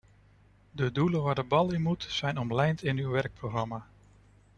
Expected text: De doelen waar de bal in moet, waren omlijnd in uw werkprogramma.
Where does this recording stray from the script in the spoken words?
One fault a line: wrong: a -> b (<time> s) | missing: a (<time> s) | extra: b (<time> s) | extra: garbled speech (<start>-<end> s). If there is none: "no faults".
wrong: waren -> zijn (2.1 s)